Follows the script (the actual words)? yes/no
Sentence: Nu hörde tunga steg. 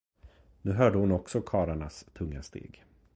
no